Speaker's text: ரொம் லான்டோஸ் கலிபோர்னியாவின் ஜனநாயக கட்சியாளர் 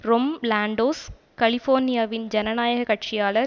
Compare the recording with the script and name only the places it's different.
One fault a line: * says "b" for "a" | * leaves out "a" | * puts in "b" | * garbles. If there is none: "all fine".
all fine